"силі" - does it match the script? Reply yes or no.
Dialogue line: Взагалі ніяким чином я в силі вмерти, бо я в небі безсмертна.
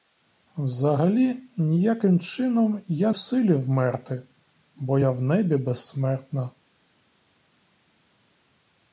yes